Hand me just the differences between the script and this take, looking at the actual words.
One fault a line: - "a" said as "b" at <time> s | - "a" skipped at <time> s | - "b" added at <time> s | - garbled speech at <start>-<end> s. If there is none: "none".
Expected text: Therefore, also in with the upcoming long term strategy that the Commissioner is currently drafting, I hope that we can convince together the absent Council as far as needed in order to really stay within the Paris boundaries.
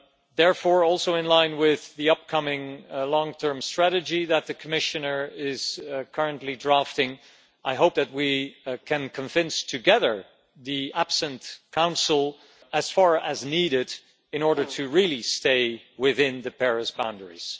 - "line" added at 1.3 s